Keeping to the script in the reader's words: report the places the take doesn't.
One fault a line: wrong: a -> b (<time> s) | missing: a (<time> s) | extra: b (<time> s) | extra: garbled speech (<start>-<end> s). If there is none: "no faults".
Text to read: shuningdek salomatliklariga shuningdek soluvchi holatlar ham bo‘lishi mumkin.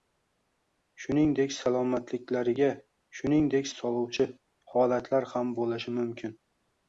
no faults